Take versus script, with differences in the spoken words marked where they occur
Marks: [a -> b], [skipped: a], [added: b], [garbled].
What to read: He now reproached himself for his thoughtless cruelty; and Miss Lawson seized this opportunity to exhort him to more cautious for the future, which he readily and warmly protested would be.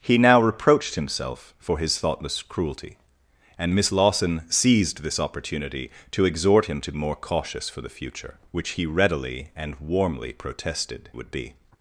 He now reproached himself for his thoughtless cruelty; and Miss Lawson seized this opportunity to exhort him to more cautious for the future, which he readily and warmly protested would be.